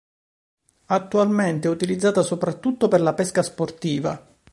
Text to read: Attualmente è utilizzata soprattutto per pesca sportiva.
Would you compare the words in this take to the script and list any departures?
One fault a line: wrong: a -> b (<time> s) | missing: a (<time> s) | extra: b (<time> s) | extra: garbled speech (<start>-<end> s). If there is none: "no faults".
extra: la (3.0 s)